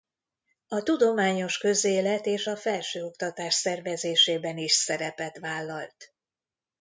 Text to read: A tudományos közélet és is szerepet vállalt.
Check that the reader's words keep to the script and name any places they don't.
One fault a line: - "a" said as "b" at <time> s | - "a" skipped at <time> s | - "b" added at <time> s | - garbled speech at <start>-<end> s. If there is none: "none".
- "a felsőoktatás szervezésében" added at 2.5 s